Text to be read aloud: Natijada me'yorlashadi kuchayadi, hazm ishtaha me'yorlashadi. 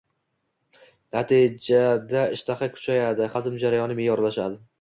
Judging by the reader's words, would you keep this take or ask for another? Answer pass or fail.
fail